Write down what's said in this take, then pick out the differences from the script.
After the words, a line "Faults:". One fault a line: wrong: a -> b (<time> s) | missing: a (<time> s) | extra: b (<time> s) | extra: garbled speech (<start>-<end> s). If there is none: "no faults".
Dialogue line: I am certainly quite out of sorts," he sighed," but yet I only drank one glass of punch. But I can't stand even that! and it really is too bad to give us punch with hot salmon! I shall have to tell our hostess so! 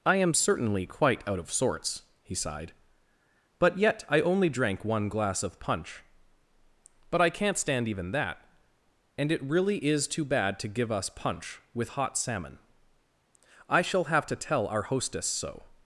I am certainly quite out of sorts," he sighed," but yet I only drank one glass of punch. But I can't stand even that! and it really is too bad to give us punch with hot salmon! I shall have to tell our hostess so!
Faults:
no faults